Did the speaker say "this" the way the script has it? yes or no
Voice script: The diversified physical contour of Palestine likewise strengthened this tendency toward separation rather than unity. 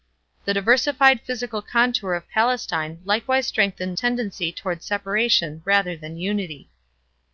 no